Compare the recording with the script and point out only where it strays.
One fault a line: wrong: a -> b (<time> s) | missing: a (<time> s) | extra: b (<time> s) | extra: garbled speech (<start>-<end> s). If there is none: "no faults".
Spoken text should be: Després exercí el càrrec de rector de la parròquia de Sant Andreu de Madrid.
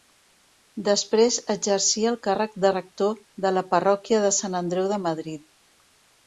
no faults